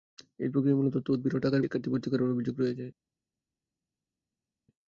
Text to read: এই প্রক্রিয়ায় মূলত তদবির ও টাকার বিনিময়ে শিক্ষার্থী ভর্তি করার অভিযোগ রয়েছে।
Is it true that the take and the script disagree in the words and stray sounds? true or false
true